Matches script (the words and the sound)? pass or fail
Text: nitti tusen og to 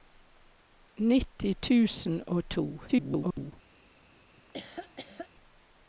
fail